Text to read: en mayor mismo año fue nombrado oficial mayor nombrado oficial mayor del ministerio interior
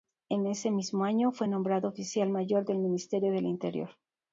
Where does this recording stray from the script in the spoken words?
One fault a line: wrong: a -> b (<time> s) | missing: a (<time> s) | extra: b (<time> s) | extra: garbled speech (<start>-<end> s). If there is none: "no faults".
wrong: mayor -> ese (0.5 s)
wrong: nombrado oficial mayor -> del ministerio (2.6 s)
missing: ministerio (3.5 s)